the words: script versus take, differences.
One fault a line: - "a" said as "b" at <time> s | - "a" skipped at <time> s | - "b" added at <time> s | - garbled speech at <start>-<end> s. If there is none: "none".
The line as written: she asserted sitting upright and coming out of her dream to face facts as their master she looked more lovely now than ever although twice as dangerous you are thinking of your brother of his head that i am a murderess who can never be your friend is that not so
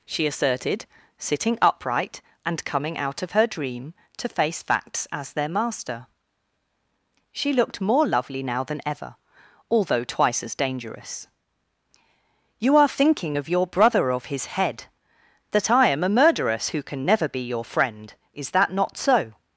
none